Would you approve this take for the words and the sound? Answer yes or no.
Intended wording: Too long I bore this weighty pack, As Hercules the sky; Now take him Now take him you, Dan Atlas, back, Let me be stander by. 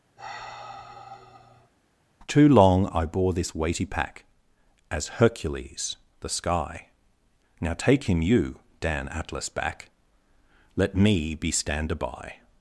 no